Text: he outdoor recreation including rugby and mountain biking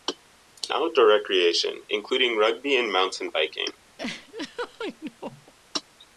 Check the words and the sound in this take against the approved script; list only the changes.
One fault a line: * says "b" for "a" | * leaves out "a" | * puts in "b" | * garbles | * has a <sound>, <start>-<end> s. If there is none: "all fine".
* has a laugh, 4.0-5.5 s